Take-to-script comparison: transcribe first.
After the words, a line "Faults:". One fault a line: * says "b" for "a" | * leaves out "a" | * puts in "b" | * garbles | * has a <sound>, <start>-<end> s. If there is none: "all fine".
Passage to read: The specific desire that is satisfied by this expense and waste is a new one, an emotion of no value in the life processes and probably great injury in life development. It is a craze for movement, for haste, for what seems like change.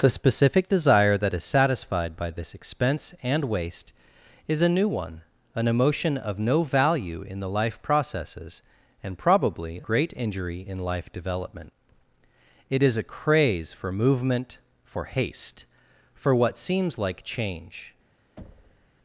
The specific desire that is satisfied by this expense and waste is a new one, an emotion of no value in the life processes and probably great injury in life development. It is a craze for movement, for haste, for what seems like change.
Faults:
* has a thud, 18.4-18.9 s